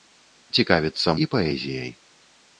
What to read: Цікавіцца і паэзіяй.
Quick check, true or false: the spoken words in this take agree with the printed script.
true